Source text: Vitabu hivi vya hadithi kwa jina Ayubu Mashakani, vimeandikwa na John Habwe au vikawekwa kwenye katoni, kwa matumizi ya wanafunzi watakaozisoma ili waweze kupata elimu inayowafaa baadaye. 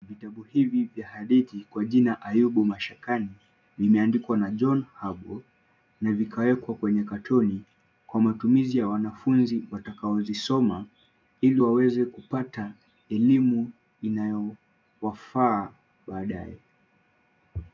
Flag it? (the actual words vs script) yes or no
yes